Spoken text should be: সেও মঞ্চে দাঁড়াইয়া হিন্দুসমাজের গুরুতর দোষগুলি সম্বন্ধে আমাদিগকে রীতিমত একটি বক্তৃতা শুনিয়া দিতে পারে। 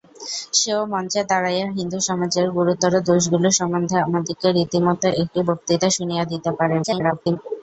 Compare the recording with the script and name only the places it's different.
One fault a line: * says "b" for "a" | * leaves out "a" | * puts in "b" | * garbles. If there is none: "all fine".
* garbles